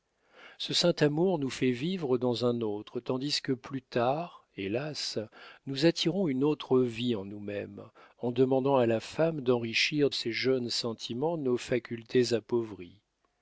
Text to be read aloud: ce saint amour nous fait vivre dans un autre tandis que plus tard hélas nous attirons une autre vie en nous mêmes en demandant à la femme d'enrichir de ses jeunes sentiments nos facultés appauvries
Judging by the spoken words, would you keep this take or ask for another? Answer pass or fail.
fail